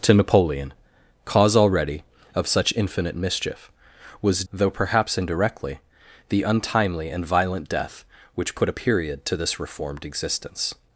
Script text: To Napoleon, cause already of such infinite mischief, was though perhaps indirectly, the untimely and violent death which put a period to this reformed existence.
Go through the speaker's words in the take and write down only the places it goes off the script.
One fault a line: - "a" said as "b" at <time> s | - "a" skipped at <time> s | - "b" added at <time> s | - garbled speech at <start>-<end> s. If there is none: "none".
none